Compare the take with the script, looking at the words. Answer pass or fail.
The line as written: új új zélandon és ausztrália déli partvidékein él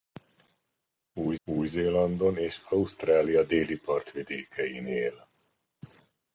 pass